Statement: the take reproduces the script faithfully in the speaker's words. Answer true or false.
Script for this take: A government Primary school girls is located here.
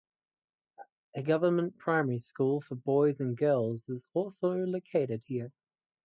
false